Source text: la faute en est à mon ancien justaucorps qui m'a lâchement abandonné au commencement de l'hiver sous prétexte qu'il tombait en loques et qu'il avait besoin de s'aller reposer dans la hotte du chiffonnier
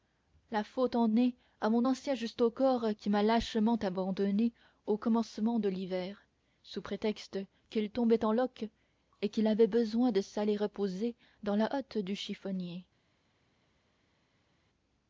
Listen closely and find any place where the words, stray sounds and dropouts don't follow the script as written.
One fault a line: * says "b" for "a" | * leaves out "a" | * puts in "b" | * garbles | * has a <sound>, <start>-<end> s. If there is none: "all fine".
all fine